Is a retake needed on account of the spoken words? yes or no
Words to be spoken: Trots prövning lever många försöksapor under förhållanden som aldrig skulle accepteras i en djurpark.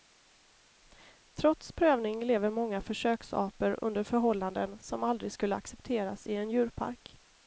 no